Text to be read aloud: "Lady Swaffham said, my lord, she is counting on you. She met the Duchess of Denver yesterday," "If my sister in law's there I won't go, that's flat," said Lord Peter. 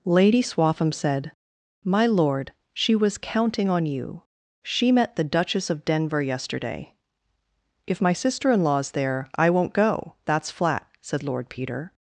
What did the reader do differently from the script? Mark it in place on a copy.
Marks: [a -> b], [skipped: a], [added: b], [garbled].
"Lady Swaffham said, my lord, she [is -> was] counting on you. She met the Duchess of Denver yesterday," "If my sister in law's there I won't go, that's flat," said Lord Peter.